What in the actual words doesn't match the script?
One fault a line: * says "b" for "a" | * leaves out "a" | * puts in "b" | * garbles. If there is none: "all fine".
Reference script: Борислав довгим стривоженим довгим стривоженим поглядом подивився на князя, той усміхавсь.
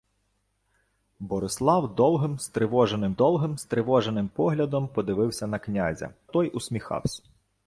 all fine